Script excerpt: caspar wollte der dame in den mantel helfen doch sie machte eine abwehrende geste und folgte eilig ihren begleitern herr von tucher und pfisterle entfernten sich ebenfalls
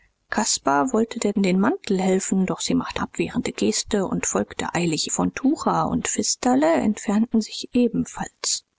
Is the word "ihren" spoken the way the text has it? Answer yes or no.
no